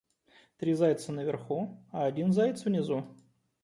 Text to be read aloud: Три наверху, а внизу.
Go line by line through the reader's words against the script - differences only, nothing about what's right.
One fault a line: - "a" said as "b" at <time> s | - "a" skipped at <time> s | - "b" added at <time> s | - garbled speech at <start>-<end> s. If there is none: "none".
- "зайца" added at 0.7 s
- "один заяц" added at 2.1 s